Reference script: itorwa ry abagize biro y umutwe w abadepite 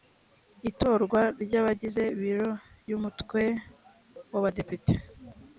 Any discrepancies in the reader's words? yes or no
no